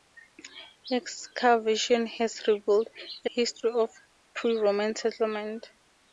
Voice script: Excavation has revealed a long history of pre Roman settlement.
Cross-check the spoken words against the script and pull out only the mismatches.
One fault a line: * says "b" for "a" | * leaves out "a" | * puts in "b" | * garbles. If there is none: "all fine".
* leaves out "long"